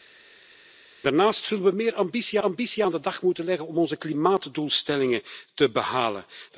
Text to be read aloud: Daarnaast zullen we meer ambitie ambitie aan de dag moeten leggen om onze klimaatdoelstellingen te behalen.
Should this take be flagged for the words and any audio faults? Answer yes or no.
no